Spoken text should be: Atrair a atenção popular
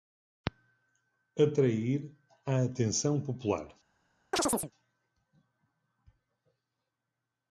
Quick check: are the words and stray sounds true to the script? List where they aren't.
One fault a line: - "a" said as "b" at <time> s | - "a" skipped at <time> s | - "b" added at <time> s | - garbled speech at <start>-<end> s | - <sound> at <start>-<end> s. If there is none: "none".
- chirp at 4.3-4.7 s